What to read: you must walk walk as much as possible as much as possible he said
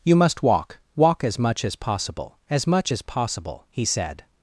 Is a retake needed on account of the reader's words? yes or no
no